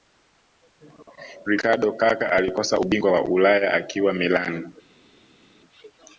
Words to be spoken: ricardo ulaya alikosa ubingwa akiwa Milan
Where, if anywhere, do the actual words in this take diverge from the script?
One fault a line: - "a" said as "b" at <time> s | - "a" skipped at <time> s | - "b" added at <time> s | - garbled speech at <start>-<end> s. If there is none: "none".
- "ulaya" said as "kaka" at 1.9 s
- "wa ulaya" added at 3.1 s